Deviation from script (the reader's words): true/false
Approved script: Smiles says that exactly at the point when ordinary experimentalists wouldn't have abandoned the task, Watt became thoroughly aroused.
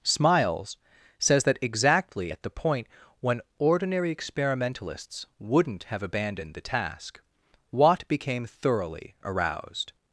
false